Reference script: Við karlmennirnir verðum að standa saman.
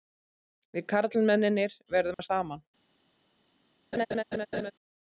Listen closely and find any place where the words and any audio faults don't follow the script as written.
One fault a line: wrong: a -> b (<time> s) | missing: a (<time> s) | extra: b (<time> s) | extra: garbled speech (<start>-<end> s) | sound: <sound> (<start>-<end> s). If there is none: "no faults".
sound: dropout (2.1-2.2 s)
missing: standa (2.3 s)
sound: laugh (3.9-4.7 s)